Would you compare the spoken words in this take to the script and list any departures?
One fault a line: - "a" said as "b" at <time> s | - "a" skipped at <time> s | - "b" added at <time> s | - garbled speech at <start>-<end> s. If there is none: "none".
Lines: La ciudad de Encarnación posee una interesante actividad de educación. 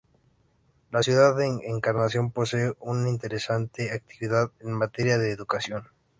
- "en materia" added at 4.6 s